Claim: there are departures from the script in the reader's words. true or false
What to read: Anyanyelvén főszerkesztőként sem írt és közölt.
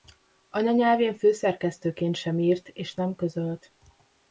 true